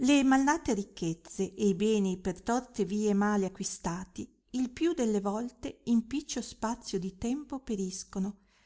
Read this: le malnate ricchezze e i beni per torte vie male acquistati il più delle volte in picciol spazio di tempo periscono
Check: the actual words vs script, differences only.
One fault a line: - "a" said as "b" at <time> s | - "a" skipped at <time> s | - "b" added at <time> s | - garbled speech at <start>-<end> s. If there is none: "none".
none